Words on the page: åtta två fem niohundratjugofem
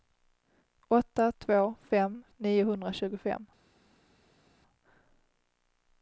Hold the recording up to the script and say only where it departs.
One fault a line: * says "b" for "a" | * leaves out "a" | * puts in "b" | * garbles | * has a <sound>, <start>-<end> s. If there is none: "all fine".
all fine